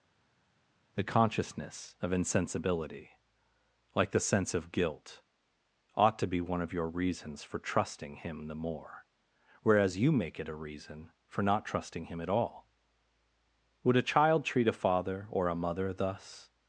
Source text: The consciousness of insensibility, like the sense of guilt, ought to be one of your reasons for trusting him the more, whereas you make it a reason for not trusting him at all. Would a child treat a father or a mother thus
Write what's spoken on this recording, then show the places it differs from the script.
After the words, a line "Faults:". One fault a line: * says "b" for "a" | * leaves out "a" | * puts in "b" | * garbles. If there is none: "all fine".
The consciousness of insensibility, like the sense of guilt, ought to be one of your reasons for trusting him the more, whereas you make it a reason for not trusting him at all. Would a child treat a father or a mother thus
Faults:
all fine